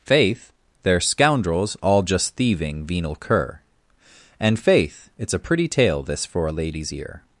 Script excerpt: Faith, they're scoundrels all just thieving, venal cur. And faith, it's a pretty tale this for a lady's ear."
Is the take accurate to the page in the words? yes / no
yes